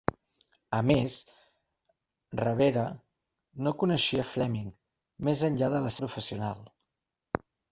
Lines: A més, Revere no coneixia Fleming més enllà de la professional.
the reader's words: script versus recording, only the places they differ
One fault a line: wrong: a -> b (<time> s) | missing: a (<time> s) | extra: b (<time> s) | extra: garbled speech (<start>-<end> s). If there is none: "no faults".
no faults